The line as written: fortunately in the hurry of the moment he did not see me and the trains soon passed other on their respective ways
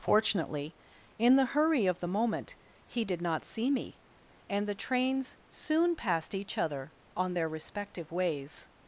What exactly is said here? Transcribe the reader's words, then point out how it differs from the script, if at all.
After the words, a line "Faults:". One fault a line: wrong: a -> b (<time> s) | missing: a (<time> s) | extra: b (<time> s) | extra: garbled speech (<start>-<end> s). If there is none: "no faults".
fortunately in the hurry of the moment he did not see me and the trains soon passed each other on their respective ways
Faults:
extra: each (6.3 s)